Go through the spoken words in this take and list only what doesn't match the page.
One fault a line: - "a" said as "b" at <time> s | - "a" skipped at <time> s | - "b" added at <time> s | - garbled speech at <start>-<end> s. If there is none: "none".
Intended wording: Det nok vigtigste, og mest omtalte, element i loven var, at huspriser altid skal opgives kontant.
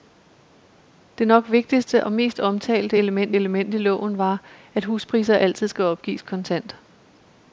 - "element" added at 3.3 s